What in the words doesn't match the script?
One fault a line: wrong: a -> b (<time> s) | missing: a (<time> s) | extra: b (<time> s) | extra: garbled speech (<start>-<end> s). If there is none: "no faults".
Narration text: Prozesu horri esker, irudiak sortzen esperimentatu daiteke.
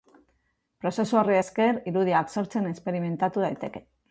no faults